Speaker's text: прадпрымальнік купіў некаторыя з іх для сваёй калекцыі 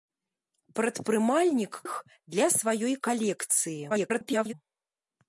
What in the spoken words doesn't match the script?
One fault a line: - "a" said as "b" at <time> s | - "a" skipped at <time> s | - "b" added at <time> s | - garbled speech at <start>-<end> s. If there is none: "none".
- "купіў некаторыя з" skipped at 1.7 s
- garbled speech at 3.9-4.5 s